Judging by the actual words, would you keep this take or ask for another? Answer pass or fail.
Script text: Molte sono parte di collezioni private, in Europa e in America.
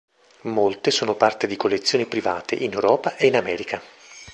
pass